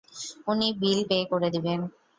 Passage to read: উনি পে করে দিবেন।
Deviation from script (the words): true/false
true